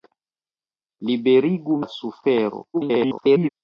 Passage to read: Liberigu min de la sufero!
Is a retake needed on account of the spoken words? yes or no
yes